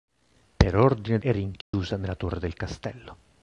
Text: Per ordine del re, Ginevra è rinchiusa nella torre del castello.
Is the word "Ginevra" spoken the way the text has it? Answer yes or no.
no